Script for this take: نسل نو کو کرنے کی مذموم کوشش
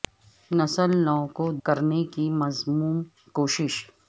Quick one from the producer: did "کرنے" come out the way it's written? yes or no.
yes